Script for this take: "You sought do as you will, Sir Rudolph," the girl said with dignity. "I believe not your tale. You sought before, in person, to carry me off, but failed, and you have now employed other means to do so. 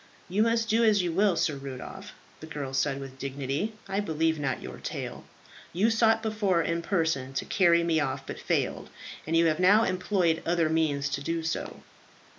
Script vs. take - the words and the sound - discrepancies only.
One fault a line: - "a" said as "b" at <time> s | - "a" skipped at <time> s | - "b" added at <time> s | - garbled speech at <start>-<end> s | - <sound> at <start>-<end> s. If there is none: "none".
- "sought" said as "must" at 0.4 s